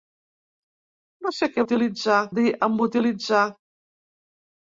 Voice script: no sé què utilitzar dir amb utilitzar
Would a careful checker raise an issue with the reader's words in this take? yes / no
no